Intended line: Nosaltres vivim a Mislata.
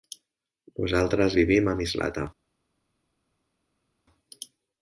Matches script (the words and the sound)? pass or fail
pass